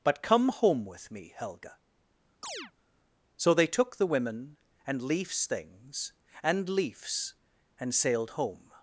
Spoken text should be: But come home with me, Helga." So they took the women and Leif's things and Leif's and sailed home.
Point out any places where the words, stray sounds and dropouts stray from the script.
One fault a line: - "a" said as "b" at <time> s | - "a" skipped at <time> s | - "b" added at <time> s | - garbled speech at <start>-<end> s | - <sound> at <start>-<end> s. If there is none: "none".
- chirp at 2.4-2.7 s